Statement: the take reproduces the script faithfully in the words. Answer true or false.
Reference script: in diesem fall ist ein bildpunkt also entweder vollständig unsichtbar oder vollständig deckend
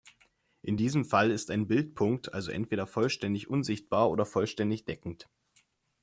true